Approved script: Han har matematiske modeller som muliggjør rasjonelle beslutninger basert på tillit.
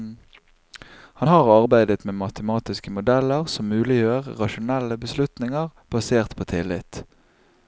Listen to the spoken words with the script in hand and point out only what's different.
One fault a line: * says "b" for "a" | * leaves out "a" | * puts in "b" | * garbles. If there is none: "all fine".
* puts in "arbeidet med"